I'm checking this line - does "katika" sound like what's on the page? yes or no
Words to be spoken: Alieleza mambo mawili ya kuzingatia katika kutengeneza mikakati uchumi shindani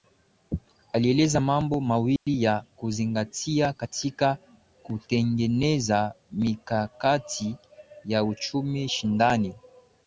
yes